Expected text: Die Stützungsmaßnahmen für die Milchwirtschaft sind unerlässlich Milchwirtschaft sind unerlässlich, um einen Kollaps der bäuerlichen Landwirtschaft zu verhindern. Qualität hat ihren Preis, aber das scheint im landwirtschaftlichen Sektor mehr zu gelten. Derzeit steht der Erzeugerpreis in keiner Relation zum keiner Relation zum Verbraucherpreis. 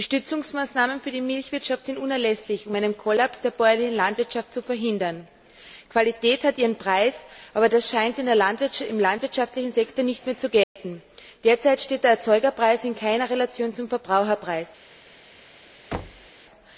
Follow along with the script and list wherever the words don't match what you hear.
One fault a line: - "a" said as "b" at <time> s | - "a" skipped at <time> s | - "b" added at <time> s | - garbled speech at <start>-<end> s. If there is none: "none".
- "Milchwirtschaft sind unerlässlich" skipped at 2.7 s
- "nicht" added at 10.0 s
- "keiner Relation zum" skipped at 13.9 s